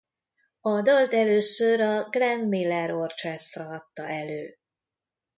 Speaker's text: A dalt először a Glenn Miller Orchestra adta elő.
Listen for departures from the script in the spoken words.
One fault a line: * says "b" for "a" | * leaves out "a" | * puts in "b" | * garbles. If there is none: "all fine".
all fine